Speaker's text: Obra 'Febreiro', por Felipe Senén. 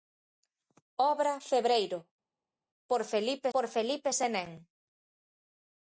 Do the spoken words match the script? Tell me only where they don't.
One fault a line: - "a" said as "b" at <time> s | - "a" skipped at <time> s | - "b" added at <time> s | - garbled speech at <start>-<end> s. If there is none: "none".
- "por Felipe" added at 3.5 s